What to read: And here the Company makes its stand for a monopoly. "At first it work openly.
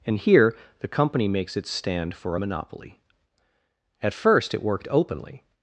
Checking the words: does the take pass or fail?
fail